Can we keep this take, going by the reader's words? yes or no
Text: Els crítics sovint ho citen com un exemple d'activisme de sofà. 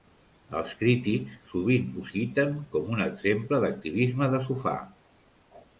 yes